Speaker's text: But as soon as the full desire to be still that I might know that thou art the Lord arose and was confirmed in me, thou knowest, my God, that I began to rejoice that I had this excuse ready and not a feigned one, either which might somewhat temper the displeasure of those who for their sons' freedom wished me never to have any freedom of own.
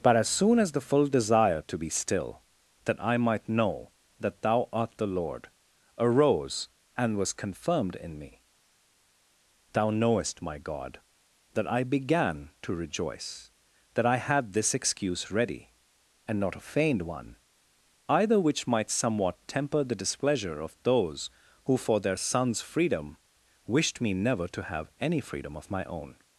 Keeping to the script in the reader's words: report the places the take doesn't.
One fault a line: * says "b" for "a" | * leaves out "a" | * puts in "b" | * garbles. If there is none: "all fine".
* puts in "my"